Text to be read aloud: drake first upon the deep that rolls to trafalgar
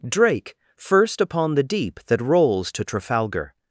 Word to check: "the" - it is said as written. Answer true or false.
true